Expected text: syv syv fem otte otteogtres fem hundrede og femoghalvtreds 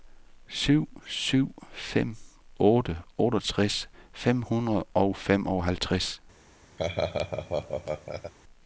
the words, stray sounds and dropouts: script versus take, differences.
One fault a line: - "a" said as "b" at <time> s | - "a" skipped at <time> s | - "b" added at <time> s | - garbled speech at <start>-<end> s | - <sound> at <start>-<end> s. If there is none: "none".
- laugh at 6.8-8.3 s